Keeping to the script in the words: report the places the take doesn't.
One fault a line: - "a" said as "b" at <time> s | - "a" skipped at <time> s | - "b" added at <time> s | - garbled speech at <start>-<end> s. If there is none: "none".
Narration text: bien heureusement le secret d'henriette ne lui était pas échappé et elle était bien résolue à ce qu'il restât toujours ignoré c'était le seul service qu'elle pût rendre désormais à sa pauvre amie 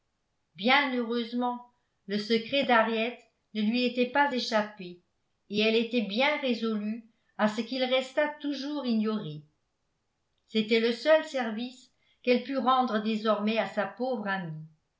none